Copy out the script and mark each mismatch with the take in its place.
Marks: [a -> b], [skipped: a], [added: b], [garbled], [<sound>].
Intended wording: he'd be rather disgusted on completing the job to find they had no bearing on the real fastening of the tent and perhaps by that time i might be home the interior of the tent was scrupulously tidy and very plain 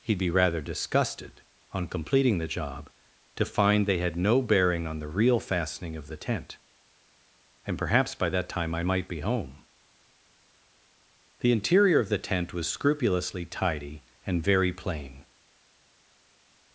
he'd be rather disgusted on completing the job to find they had no bearing on the real fastening of the tent and perhaps by that time i might be home the interior of the tent was scrupulously tidy and very plain